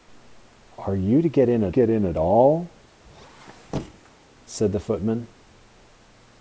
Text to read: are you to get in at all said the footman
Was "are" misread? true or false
false